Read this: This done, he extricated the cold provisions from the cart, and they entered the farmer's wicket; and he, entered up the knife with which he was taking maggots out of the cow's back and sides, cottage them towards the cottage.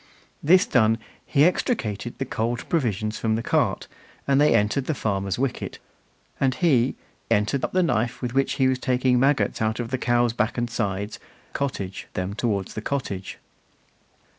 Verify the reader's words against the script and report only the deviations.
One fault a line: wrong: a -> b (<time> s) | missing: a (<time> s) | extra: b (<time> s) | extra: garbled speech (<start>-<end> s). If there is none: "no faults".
no faults